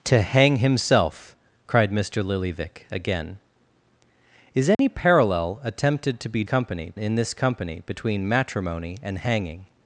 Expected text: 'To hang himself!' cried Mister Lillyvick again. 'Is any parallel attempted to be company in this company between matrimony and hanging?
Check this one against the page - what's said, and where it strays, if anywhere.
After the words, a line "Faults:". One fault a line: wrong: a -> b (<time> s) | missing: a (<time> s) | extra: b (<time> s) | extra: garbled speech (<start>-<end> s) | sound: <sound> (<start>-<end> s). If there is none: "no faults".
'To hang himself!' cried Mister Lillyvick again. 'Is any parallel attempted to be company in this company between matrimony and hanging?
Faults:
sound: dropout (4.7-4.8 s)